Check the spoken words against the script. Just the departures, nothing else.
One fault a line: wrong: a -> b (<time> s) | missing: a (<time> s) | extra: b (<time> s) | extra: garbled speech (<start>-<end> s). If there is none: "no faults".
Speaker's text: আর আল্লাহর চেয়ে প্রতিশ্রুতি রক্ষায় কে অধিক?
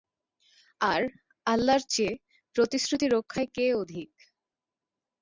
no faults